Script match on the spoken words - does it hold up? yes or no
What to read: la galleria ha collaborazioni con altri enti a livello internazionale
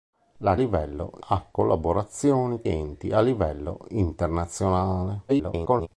no